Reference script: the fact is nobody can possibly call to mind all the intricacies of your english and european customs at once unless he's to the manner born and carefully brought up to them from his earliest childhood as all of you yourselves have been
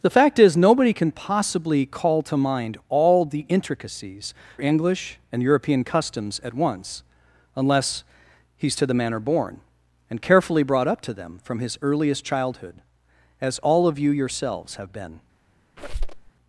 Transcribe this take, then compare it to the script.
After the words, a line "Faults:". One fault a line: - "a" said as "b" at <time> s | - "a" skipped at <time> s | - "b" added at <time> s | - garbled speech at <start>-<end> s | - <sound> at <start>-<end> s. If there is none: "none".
the fact is nobody can possibly call to mind all the intricacies english and european customs at once unless he's to the manner born and carefully brought up to them from his earliest childhood as all of you yourselves have been
Faults:
- "of your" skipped at 4.3 s
- squeak at 15.8-16.3 s